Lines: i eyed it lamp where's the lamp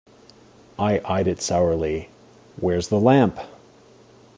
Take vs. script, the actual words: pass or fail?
fail